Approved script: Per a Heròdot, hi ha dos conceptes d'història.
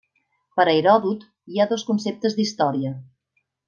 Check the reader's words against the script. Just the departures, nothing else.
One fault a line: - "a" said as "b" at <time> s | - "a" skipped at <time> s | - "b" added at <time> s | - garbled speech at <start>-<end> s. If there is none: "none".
none